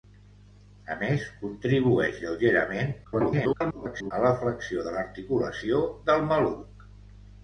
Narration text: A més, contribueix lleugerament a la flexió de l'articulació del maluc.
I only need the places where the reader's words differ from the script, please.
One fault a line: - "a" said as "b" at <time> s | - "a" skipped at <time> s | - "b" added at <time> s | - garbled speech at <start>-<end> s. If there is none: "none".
- garbled speech at 3.0-4.1 s